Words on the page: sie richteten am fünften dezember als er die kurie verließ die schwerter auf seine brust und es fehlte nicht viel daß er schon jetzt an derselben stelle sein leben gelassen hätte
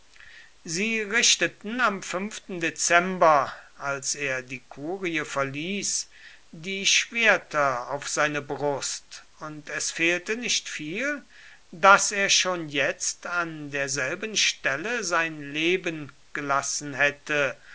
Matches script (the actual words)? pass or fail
pass